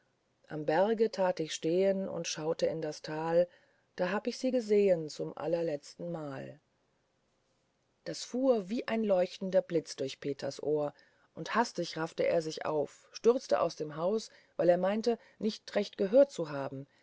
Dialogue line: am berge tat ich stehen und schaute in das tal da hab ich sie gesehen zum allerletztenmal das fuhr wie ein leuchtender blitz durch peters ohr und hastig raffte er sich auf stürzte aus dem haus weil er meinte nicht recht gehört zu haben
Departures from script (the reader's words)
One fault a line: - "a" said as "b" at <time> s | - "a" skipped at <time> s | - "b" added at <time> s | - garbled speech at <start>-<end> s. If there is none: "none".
none